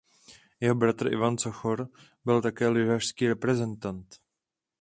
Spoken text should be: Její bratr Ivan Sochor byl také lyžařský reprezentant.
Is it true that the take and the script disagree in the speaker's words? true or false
true